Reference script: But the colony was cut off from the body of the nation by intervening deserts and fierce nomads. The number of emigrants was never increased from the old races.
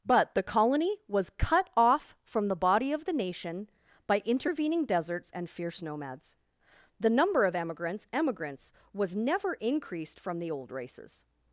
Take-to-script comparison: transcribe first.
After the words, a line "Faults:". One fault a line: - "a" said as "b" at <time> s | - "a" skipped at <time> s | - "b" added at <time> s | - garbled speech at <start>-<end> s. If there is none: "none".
But the colony was cut off from the body of the nation by intervening deserts and fierce nomads. The number of emigrants emigrants was never increased from the old races.
Faults:
- "emigrants" added at 8.1 s